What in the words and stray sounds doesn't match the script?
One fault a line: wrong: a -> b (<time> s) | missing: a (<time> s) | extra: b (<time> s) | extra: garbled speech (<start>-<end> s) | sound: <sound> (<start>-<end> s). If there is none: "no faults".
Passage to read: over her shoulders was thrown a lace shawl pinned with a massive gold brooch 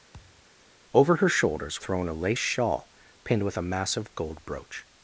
sound: thud (0.1-0.4 s)
missing: was (1.8 s)